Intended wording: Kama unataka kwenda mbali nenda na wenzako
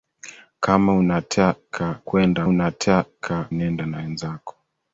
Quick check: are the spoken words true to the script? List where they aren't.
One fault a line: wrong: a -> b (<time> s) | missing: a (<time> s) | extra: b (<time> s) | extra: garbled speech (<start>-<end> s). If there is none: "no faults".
wrong: mbali -> unataka (2.4 s)